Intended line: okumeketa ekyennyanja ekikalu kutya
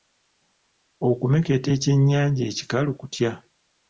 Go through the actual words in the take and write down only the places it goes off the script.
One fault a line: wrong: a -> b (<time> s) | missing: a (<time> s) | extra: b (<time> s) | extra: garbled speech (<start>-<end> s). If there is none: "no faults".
no faults